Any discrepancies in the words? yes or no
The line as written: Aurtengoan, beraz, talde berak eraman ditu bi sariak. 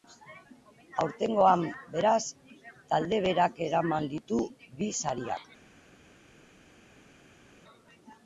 no